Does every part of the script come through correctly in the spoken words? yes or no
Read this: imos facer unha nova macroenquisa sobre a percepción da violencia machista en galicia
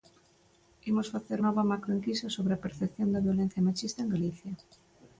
no